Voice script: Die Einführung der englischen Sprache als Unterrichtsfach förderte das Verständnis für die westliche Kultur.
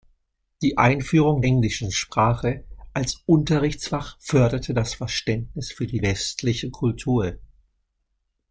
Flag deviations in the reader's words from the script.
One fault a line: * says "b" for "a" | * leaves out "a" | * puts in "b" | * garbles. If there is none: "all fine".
* leaves out "der"